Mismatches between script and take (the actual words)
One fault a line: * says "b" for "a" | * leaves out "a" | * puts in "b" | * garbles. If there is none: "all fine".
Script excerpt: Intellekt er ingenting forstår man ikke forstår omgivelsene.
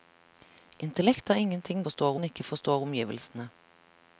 all fine